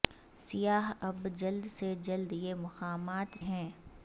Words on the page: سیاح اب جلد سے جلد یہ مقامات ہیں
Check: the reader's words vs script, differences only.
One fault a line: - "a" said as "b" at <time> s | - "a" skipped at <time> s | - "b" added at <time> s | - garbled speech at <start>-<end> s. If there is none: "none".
none